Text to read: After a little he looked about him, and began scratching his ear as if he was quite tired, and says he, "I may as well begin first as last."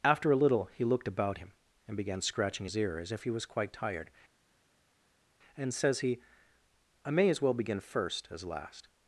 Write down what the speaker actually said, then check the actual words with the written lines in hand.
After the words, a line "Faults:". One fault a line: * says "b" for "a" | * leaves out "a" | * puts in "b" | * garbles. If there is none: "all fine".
After a little he looked about him, and began scratching his ear as if he was quite tired, and says he, "I may as well begin first as last."
Faults:
all fine